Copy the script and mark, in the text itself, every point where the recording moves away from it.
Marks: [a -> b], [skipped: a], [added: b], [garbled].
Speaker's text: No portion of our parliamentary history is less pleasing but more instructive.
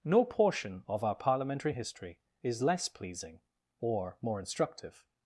No portion of our parliamentary history is less pleasing [but -> or] more instructive.